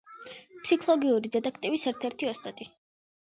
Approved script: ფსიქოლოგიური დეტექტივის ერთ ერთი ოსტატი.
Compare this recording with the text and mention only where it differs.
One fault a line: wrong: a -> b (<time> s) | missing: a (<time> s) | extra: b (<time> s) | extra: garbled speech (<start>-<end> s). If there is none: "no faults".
no faults